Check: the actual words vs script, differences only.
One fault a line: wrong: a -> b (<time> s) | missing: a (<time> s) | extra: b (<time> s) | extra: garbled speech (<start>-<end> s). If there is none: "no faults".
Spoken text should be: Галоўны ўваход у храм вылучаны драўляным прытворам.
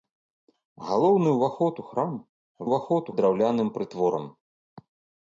wrong: вылучаны -> ўваход (2.6 s)